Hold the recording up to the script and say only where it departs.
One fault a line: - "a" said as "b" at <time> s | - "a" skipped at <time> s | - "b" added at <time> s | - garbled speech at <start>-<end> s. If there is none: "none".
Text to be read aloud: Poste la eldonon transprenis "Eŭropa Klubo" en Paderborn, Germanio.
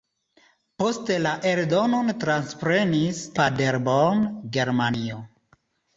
- "Eŭropa Klubo en" skipped at 3.2 s